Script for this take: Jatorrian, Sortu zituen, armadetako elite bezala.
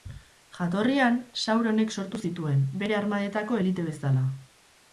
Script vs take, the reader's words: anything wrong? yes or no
yes